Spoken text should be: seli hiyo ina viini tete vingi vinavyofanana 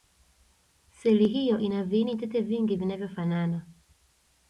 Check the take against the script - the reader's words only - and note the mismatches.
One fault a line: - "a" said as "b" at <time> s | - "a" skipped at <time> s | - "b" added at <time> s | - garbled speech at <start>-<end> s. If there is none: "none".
none